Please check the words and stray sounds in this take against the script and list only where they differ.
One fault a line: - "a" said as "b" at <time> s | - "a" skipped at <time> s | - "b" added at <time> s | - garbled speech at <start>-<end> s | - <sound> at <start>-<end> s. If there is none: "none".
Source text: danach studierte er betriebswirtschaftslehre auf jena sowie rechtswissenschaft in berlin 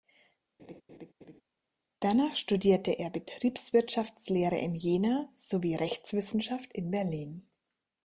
- laugh at 0.6-1.4 s
- "auf" said as "in" at 4.6 s